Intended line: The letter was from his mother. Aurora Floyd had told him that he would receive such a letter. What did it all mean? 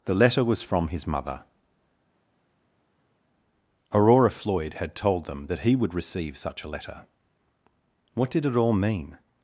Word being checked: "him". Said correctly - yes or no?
no